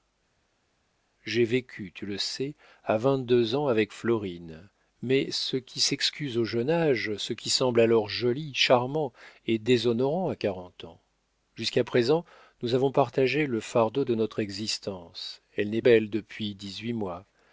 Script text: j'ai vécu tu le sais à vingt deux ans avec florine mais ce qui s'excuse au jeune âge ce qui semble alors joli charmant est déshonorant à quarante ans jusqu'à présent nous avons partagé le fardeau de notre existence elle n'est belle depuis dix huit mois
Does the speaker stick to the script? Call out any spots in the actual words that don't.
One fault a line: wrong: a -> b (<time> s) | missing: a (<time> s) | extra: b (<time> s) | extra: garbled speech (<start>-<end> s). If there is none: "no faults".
no faults